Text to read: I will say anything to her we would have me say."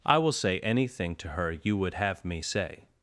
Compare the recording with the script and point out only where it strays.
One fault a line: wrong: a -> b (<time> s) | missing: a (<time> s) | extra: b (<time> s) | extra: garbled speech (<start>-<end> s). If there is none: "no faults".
wrong: we -> you (1.5 s)